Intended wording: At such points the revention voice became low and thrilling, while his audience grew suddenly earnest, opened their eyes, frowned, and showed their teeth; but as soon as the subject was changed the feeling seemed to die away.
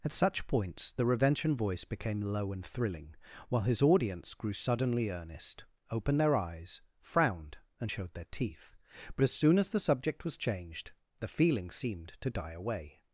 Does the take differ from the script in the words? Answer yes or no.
no